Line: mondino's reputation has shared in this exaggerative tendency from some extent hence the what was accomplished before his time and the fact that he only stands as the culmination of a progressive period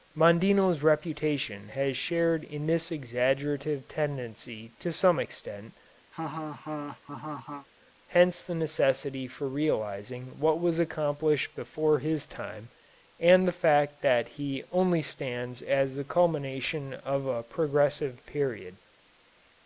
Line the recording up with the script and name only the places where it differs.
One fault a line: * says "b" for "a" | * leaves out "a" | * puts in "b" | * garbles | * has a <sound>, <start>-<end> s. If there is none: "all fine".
* says "to" for "from"
* has a laugh, 6.1-7.7 s
* puts in "necessity for realizing"